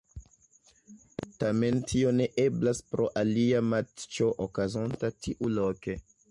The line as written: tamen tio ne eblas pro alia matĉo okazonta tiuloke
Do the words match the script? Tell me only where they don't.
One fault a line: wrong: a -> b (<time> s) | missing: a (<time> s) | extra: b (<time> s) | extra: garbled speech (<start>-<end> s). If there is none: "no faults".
no faults